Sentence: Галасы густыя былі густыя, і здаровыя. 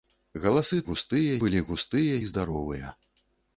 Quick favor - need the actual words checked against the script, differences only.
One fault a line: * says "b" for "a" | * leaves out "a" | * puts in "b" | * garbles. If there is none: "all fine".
all fine